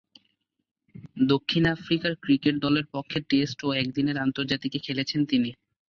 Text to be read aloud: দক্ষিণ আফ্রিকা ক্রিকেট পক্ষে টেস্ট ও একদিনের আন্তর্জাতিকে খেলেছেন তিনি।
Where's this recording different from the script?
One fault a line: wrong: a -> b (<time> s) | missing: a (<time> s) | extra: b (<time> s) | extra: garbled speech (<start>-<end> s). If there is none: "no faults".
extra: দলের (2.6 s)